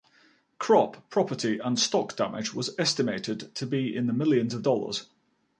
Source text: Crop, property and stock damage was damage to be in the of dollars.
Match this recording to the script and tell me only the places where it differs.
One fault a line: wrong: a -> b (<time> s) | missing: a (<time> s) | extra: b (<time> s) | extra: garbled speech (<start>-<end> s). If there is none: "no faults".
wrong: damage -> estimated (2.8 s)
extra: millions (4.1 s)